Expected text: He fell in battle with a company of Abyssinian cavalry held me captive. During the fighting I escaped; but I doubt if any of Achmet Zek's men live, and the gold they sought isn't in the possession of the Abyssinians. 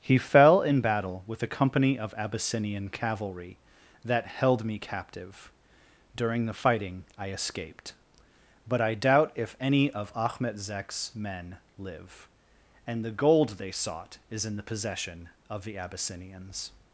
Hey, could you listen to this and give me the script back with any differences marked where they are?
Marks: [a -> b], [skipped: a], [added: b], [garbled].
He fell in battle with a company of Abyssinian cavalry [added: that] held me captive. During the fighting I escaped; but I doubt if any of Achmet Zek's men live, and the gold they sought [isn't -> is] in the possession of the Abyssinians.